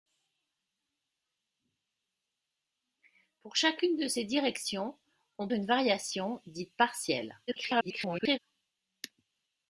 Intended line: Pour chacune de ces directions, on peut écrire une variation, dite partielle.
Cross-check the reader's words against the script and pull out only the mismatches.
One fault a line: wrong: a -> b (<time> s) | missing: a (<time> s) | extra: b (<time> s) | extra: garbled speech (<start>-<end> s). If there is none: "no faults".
missing: peut écrire (5.5 s)
extra: garbled speech (7.5-8.4 s)